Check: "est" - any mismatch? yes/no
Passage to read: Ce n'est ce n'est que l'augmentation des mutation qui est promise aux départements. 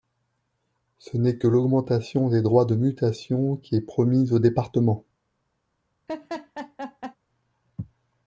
no